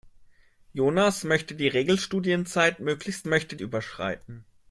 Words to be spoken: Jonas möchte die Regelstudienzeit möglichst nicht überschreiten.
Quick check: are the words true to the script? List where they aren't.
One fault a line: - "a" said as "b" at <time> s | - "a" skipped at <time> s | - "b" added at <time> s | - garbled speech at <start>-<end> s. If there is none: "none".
- "nicht" said as "möchte" at 3.2 s